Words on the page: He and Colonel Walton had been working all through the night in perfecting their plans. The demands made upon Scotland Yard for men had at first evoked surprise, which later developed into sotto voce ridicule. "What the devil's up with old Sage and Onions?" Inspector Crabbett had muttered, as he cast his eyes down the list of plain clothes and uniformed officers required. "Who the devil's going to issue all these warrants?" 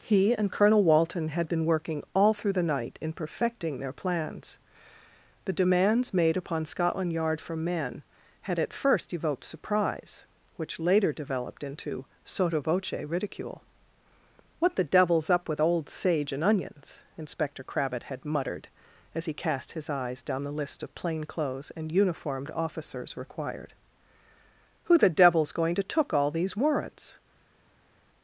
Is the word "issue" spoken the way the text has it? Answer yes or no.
no